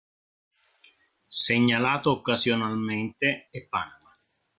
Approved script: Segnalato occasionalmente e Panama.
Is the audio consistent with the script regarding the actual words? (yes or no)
yes